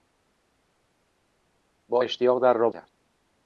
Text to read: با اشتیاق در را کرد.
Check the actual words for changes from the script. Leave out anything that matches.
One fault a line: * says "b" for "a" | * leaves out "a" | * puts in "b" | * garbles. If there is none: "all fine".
all fine